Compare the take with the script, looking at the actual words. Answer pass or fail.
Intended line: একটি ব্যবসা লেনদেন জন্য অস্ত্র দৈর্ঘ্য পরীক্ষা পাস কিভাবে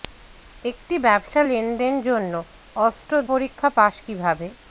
fail